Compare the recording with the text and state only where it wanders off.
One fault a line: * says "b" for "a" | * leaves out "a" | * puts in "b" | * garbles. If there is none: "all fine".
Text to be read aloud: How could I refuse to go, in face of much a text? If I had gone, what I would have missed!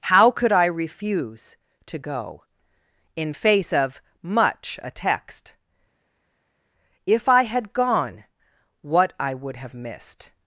all fine